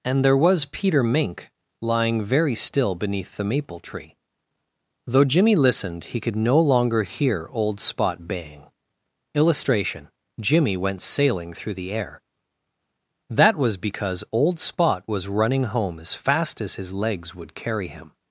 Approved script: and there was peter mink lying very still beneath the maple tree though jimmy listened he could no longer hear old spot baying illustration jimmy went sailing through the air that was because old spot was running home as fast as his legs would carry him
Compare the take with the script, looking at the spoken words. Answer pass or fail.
pass